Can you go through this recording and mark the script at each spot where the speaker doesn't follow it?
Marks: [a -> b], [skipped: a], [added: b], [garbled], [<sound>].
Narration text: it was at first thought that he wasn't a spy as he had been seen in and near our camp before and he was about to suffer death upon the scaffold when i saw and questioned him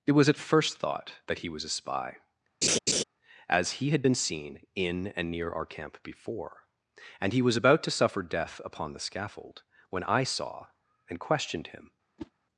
it was at first thought that he [wasn't -> was] a spy [laugh] as he had been seen in and near our camp before and he was about to suffer death upon the scaffold when i saw and questioned him [whoosh]